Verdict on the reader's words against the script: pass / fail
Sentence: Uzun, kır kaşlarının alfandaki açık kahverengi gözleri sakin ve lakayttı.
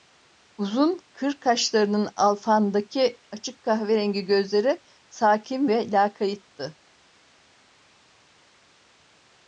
pass